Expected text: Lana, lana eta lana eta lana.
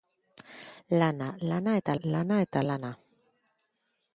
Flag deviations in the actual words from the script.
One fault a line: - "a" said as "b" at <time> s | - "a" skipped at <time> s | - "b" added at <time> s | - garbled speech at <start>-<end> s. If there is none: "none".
none